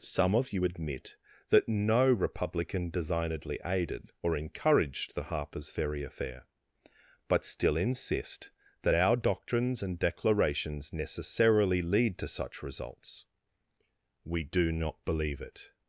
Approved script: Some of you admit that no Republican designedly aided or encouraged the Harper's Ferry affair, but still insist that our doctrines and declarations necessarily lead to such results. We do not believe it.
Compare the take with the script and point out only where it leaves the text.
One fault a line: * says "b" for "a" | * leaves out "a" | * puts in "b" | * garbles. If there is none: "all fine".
all fine